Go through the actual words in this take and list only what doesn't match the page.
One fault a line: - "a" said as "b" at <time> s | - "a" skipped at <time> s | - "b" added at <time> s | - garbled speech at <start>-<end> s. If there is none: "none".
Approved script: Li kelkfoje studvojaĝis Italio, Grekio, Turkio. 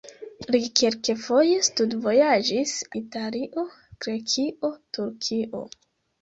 none